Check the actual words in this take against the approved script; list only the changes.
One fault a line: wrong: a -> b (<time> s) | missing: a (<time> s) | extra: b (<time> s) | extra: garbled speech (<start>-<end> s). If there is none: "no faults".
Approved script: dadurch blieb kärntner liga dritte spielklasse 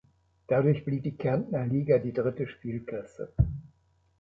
extra: die (1.0 s)
extra: die (2.0 s)